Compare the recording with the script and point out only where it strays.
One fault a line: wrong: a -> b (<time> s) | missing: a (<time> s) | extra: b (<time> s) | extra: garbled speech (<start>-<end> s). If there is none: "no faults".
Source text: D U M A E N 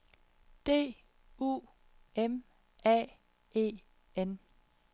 no faults